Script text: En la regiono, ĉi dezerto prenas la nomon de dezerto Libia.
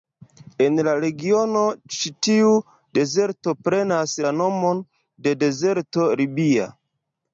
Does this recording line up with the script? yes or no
no